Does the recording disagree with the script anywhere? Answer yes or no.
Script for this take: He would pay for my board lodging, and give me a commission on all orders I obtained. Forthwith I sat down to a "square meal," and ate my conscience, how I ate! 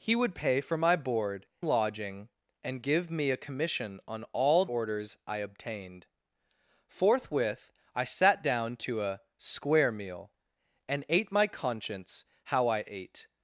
no